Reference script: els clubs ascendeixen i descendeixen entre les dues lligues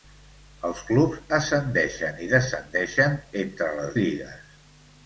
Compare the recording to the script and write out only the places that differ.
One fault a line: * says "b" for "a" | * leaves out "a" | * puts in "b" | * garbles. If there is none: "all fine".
* leaves out "dues"